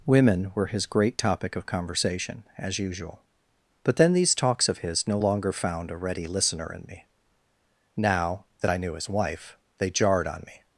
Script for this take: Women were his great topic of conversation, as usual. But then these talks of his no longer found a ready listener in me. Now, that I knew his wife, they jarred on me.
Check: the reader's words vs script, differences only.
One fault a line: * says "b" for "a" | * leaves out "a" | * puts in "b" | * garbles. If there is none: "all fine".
all fine